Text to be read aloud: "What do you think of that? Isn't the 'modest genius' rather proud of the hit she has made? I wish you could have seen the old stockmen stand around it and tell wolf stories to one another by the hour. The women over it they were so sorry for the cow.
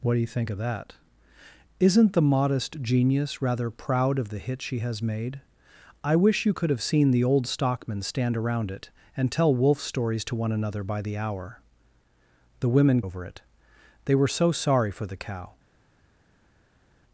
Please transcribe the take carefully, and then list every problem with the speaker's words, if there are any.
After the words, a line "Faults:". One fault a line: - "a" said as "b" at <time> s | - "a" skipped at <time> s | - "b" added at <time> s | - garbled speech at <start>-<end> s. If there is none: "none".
"What do you think of that? Isn't the 'modest genius' rather proud of the hit she has made? I wish you could have seen the old stockmen stand around it and tell wolf stories to one another by the hour. The women over it they were so sorry for the cow.
Faults:
none